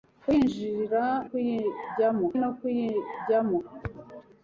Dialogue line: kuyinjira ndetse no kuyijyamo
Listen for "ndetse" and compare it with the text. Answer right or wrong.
wrong